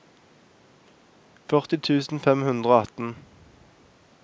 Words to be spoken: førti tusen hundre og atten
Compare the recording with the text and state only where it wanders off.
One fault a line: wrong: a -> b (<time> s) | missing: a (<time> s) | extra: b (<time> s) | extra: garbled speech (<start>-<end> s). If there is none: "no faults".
extra: fem (2.2 s)